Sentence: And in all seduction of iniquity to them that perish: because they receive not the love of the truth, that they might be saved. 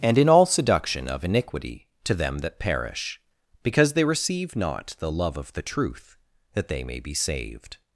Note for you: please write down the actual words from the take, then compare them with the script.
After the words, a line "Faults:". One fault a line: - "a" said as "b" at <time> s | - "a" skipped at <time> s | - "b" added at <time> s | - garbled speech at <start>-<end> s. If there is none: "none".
And in all seduction of iniquity to them that perish: because they receive not the love of the truth, that they may be saved.
Faults:
- "might" said as "may" at 6.8 s